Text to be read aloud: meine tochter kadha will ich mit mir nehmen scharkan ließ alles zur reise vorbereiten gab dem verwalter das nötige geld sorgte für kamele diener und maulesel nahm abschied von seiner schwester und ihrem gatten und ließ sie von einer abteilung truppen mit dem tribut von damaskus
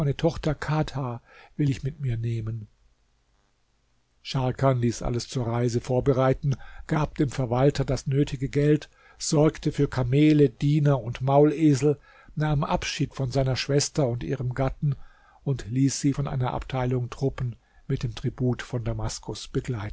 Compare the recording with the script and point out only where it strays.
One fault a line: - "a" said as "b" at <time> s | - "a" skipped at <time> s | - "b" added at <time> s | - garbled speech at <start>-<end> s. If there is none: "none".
none